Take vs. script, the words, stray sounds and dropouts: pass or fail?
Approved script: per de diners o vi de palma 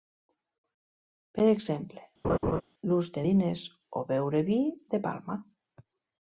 fail